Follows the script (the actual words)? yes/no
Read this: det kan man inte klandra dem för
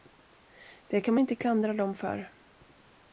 no